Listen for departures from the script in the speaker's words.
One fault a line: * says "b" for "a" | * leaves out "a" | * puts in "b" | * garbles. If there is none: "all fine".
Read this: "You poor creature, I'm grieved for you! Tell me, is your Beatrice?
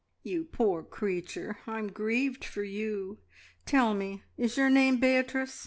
* puts in "name"